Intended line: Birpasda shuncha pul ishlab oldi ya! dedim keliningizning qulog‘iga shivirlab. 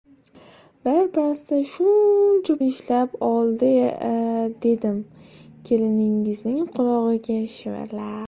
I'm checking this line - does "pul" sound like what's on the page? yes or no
no